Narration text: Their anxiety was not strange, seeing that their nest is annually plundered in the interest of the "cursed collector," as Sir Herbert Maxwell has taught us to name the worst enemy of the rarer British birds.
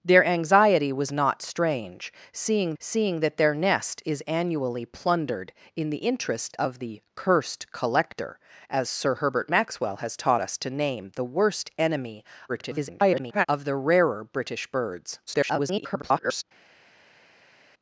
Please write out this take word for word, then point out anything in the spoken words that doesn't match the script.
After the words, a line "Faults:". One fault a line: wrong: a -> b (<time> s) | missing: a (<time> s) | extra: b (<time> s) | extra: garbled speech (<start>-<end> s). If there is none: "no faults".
Their anxiety was not strange, seeing seeing that their nest is annually plundered in the interest of the "cursed collector," as Sir Herbert Maxwell has taught us to name the worst enemy [garbled] of the rarer British birds. [garbled]
Faults:
extra: seeing (2.8 s)
extra: garbled speech (12.5-13.5 s)
extra: garbled speech (15.3-16.4 s)